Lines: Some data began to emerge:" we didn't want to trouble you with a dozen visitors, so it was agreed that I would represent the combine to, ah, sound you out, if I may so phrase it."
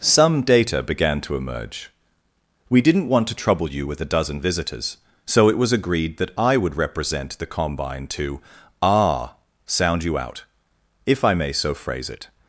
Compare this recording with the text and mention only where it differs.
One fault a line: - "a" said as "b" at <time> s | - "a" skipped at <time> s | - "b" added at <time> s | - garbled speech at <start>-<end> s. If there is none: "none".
none